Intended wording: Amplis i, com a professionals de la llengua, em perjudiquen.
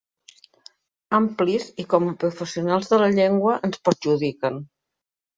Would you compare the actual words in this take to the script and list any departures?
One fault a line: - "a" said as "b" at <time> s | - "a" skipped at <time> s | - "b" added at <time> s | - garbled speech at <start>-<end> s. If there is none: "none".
- "em" said as "ens" at 3.7 s